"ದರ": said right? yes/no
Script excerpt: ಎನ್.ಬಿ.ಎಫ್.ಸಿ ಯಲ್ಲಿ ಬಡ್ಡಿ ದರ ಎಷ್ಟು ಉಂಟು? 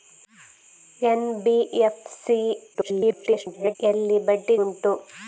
no